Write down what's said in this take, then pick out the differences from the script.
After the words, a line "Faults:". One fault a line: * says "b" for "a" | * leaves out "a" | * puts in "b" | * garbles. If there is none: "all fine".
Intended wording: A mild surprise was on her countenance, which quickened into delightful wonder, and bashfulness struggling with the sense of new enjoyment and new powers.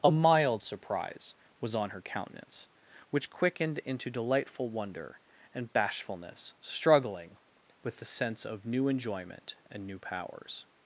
A mild surprise was on her countenance, which quickened into delightful wonder, and bashfulness struggling with the sense of new enjoyment and new powers.
Faults:
all fine